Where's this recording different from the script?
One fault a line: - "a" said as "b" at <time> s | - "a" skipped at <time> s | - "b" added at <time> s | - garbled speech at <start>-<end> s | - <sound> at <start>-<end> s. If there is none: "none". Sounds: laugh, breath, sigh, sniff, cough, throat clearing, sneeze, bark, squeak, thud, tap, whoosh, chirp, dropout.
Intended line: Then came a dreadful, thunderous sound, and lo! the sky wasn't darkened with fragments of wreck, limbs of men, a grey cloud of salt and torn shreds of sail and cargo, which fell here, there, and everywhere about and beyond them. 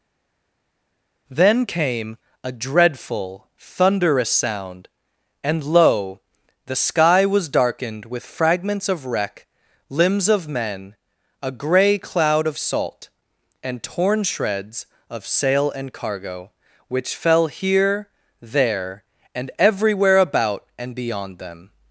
- "wasn't" said as "was" at 7.2 s